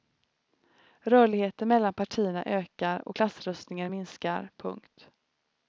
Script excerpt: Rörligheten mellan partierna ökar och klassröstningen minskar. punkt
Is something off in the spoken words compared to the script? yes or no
no